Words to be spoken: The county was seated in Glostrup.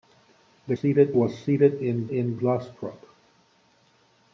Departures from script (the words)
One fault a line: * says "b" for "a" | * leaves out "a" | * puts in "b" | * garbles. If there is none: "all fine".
* says "seated" for "county"
* puts in "in"